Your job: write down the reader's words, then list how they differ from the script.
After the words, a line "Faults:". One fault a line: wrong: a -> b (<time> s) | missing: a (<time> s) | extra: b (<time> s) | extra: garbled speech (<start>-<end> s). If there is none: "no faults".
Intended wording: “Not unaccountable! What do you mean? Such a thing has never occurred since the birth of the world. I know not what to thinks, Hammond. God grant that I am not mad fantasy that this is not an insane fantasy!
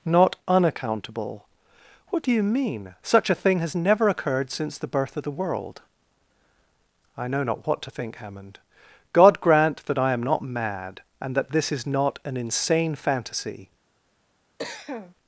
“Not unaccountable! What do you mean? Such a thing has never occurred since the birth of the world. I know not what to think, Hammond. God grant that I am not mad and that this is not an insane fantasy!
Faults:
wrong: thinks -> think (7.9 s)
wrong: fantasy -> and (11.2 s)